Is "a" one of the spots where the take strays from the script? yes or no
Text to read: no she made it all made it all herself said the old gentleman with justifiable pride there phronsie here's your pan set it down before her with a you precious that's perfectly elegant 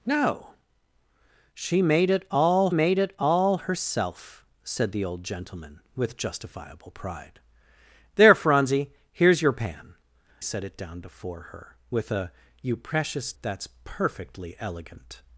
no